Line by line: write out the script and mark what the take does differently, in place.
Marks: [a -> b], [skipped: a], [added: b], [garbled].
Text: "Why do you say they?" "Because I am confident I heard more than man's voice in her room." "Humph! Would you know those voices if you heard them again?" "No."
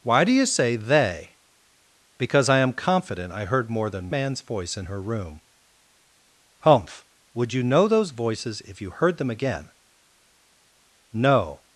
"Why do you say they?" "Because I am confident I heard more than man's voice in her room." "Humph! Would you know those voices if you heard them again?" "No."